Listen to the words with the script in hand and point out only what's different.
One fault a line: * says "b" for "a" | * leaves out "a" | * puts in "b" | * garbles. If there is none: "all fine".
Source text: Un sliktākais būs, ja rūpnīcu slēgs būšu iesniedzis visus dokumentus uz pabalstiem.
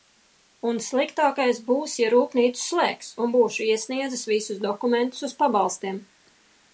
* puts in "un"